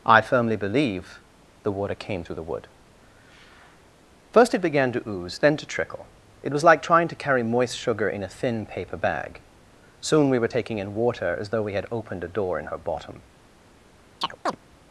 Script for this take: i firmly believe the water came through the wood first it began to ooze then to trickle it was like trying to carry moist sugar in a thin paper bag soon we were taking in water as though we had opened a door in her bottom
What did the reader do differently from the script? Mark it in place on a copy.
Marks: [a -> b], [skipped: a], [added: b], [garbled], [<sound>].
i firmly believe the water came through the wood first it began to ooze then to trickle it was like trying to carry moist sugar in a thin paper bag soon we were taking in water as though we had opened a door in her bottom [chirp]